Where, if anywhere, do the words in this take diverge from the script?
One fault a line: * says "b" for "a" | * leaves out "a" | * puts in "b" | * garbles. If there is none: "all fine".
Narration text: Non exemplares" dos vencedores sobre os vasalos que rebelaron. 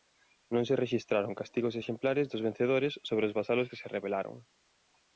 * puts in "se rexistraron castigos"
* puts in "se"